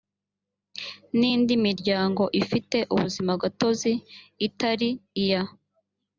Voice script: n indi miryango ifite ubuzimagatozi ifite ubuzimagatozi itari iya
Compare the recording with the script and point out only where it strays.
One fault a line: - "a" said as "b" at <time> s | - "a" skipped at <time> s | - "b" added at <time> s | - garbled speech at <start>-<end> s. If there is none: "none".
- "ifite ubuzimagatozi" skipped at 3.9 s